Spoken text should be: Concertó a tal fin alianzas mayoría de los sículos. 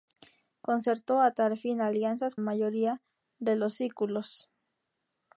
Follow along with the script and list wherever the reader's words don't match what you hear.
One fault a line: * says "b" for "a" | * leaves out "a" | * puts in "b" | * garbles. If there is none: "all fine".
all fine